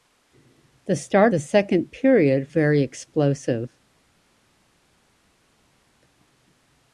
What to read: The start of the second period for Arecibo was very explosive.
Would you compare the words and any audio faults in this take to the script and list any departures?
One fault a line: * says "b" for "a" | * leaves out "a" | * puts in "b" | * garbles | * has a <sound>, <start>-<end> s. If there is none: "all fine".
* leaves out "of"
* leaves out "for Arecibo was"